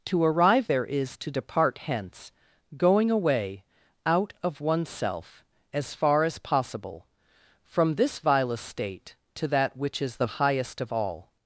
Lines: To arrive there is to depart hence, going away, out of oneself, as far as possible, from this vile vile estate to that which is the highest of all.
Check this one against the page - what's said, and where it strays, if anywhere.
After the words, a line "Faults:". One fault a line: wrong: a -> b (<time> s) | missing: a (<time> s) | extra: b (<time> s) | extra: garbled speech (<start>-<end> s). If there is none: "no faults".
To arrive there is to depart hence, going away, out of oneself, as far as possible, from this vile estate to that which is the highest of all.
Faults:
missing: vile (8.5 s)